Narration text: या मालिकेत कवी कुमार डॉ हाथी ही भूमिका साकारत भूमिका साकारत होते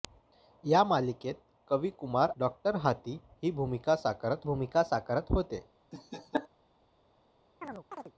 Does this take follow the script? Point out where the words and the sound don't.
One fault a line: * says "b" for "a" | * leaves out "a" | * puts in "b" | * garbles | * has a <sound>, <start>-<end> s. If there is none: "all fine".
* has a laugh, 5.9-6.5 s
* has a chirp, 7.6-8.1 s